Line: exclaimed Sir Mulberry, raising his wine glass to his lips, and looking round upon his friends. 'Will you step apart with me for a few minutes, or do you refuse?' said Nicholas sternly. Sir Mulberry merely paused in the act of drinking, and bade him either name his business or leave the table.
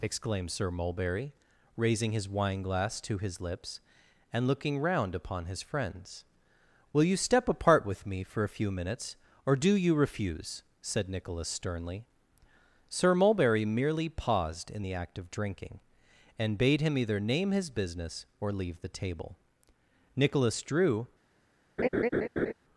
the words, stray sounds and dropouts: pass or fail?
fail